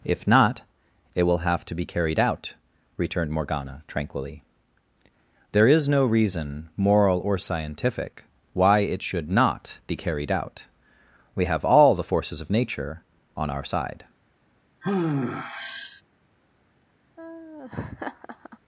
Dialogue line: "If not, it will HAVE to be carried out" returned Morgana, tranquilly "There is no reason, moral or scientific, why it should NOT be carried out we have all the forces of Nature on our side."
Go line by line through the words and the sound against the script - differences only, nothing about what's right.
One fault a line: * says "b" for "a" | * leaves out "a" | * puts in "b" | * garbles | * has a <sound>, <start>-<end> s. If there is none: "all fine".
* has a sigh, 14.8-16.0 s
* has a laugh, 17.2-18.6 s